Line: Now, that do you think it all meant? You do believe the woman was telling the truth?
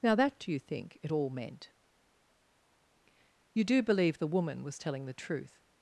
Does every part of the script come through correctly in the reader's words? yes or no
yes